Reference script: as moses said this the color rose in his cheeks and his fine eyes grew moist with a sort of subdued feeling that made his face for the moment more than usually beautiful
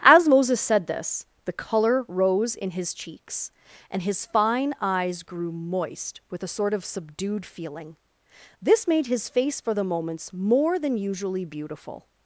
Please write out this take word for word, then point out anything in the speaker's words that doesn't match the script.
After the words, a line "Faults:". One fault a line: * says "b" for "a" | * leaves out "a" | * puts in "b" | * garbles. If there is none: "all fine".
as moses said this the color rose in his cheeks and his fine eyes grew moist with a sort of subdued feeling this made his face for the moments more than usually beautiful
Faults:
* says "this" for "that"
* says "moments" for "moment"